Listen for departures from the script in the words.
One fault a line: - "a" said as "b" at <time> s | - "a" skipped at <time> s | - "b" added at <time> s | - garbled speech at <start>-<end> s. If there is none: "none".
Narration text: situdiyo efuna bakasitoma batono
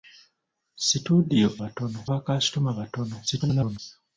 - "efuna" said as "batono" at 1.6 s
- garbled speech at 3.3-3.8 s